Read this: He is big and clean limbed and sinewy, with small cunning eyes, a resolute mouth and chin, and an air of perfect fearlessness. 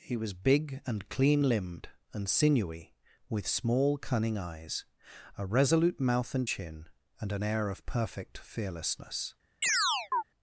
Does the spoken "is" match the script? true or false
false